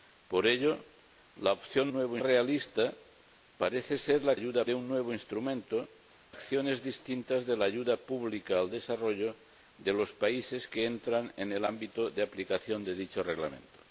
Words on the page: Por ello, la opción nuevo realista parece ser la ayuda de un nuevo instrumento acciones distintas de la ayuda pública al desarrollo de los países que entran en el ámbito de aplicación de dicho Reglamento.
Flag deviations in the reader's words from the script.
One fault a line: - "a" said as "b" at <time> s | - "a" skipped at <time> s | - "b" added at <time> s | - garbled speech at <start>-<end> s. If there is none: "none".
none